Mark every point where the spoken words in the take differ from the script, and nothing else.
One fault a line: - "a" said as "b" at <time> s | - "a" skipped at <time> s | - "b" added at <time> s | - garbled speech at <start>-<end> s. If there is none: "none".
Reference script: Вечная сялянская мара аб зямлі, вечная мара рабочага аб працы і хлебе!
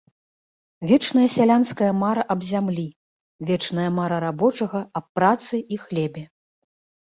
none